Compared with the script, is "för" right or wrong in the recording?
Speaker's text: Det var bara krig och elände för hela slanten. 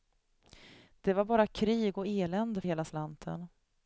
wrong